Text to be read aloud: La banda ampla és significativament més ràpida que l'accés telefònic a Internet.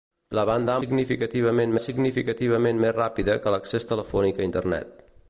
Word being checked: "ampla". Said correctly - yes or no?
no